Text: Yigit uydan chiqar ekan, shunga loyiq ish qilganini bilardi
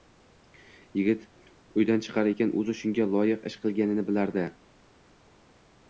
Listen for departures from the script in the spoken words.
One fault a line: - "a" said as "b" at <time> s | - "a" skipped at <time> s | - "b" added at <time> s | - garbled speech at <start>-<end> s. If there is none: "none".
- "o'zi" added at 2.6 s